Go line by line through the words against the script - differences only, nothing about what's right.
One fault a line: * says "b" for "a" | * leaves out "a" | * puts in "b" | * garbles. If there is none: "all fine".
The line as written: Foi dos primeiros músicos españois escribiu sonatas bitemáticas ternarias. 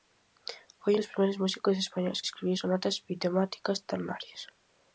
all fine